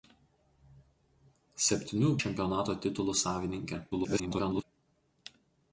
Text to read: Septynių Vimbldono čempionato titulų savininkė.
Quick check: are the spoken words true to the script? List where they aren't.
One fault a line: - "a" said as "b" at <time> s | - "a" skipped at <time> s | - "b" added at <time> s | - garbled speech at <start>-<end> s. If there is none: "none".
- "Vimbldono" skipped at 2.1 s
- garbled speech at 3.9-4.6 s